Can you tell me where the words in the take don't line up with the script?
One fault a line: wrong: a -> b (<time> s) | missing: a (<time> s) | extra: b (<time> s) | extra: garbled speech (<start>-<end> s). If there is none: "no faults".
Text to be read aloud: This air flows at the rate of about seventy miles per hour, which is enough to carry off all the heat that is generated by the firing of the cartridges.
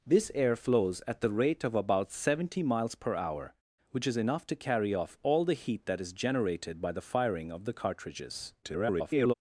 extra: garbled speech (8.6-9.3 s)